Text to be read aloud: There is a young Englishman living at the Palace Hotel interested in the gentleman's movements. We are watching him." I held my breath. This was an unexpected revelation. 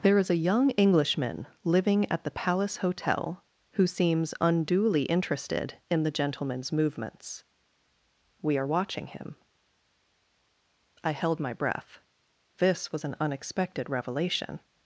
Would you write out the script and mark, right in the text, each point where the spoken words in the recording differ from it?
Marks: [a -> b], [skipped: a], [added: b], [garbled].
There is a young Englishman living at the Palace Hotel [added: who seems unduly] interested in the gentleman's movements. We are watching him." I held my breath. This was an unexpected revelation.